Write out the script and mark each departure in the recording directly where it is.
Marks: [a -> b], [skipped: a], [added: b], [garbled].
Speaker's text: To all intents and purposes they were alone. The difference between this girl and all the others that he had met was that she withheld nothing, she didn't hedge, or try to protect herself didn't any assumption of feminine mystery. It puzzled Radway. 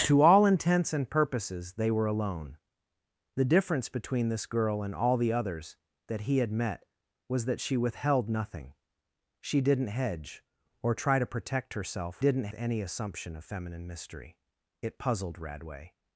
To all intents and purposes they were alone. The difference between this girl and all the others that he had met was that she withheld nothing, she didn't hedge, or try to protect herself didn't any assumption of feminine mystery. It puzzled Radway.